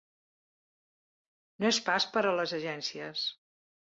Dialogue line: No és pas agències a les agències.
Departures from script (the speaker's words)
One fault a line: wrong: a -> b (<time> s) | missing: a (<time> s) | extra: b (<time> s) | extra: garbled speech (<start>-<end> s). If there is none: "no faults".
wrong: agències -> per (2.1 s)